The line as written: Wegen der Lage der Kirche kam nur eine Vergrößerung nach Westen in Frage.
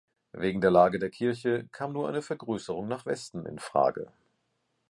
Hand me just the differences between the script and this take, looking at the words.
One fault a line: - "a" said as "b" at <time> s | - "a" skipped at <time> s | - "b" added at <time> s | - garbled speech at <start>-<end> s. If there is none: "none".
none